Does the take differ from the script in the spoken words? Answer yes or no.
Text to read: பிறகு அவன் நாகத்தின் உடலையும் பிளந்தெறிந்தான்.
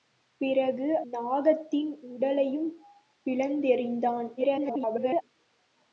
yes